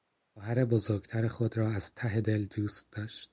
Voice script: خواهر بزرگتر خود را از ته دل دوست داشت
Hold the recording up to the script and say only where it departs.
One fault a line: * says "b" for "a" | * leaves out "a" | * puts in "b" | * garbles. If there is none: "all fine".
all fine